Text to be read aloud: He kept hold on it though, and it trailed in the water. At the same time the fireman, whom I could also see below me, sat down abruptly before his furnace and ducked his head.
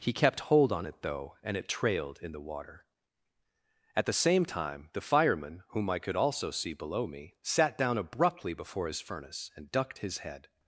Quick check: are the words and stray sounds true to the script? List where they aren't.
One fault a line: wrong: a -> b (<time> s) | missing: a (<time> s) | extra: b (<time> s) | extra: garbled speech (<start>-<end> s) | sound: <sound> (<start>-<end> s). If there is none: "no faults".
no faults